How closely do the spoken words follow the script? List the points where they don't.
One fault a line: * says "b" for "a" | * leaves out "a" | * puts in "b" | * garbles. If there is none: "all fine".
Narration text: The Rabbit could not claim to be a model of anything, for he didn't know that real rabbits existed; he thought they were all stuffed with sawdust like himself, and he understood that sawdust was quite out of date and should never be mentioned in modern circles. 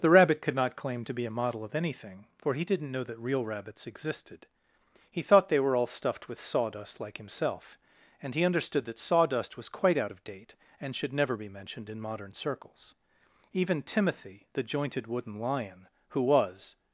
* puts in "Even Timothy the jointed wooden lion who was"